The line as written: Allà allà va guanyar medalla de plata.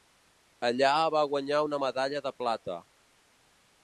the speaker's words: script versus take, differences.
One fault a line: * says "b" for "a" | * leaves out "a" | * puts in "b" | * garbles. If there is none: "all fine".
* leaves out "allà"
* puts in "una"